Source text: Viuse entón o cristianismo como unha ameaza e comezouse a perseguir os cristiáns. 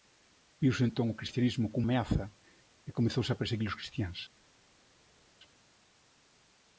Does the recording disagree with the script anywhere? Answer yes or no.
yes